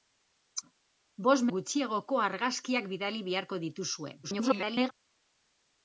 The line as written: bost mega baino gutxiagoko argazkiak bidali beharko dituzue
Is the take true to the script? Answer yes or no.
no